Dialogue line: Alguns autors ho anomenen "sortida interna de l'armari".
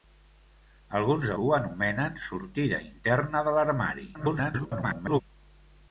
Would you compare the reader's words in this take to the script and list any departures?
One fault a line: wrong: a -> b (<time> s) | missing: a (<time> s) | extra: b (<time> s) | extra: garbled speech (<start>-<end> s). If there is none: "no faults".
missing: autors (1.3 s)
extra: garbled speech (4.1-5.2 s)